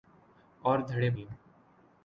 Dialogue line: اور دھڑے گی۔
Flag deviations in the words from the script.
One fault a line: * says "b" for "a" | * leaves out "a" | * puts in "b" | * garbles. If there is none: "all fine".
all fine